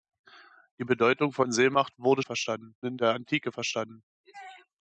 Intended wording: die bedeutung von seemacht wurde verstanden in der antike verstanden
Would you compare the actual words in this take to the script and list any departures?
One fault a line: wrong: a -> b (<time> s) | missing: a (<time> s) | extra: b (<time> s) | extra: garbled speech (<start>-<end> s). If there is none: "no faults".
no faults